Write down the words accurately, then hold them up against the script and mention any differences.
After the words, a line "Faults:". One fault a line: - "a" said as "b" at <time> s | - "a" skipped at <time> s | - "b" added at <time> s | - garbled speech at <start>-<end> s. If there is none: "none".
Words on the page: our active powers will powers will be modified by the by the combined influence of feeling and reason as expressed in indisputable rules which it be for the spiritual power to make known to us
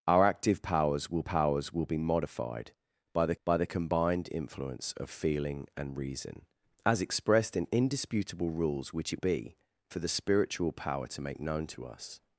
our active powers will powers will be modified by the by the combined influence of feeling and reason as expressed in indisputable rules which it be for the spiritual power to make known to us
Faults:
none